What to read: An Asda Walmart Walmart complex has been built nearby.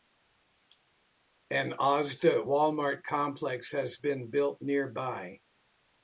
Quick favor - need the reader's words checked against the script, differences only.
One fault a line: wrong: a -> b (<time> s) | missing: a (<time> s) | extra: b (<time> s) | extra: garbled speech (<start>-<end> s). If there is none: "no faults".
missing: Walmart (3.0 s)